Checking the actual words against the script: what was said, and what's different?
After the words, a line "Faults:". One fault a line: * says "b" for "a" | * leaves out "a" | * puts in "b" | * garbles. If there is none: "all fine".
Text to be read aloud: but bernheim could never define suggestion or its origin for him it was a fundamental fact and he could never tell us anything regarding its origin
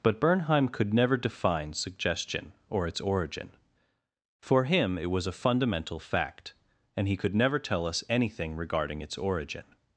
but bernheim could never define suggestion or its origin for him it was a fundamental fact and he could never tell us anything regarding its origin
Faults:
all fine